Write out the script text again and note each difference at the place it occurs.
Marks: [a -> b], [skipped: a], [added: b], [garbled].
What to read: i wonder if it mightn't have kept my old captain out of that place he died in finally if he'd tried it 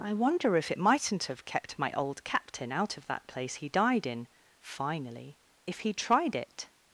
i wonder if it mightn't have kept my old captain out of that place he died in finally if he'd tried it